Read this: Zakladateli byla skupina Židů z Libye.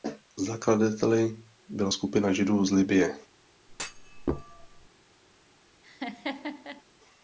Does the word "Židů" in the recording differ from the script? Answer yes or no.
no